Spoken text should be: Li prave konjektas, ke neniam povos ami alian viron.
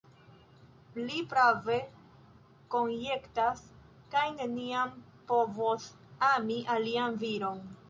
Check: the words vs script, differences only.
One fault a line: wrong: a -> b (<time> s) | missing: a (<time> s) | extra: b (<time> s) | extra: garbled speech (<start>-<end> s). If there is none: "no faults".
no faults